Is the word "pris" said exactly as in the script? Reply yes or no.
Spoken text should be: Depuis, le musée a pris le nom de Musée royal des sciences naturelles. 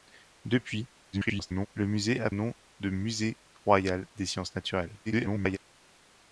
no